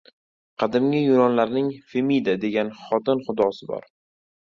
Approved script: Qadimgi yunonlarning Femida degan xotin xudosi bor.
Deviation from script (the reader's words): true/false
false